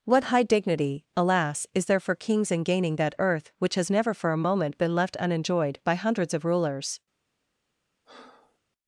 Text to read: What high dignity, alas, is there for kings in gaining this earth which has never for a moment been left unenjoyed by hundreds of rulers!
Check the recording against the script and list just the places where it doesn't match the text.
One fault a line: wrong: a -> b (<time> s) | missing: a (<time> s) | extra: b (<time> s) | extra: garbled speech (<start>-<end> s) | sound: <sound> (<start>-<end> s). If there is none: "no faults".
wrong: this -> that (3.0 s)
sound: breath (8.0-8.6 s)